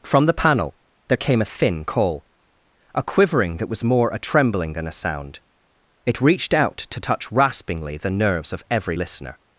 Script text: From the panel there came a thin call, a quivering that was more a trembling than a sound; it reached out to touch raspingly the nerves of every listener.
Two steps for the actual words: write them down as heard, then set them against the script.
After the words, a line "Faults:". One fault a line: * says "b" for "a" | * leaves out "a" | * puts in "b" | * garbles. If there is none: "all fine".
From the panel there came a thin call, a quivering that was more a trembling than a sound; it reached out to touch raspingly the nerves of every listener.
Faults:
all fine